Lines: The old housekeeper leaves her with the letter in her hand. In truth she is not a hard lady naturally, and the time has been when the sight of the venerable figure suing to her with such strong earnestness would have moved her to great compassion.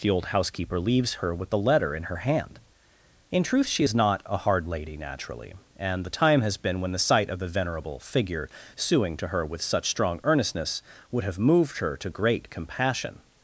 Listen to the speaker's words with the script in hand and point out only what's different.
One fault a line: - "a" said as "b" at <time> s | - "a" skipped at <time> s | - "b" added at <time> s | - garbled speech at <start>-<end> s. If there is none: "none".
none